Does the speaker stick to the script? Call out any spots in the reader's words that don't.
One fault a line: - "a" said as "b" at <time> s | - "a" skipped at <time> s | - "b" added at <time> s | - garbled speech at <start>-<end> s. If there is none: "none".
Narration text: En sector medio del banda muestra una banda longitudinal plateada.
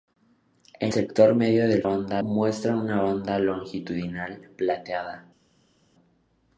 none